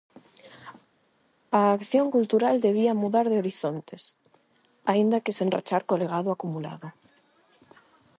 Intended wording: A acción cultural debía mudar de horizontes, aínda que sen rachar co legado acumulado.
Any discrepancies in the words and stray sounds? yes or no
no